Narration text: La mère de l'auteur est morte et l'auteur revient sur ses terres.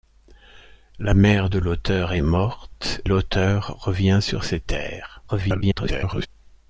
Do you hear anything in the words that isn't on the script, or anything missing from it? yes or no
yes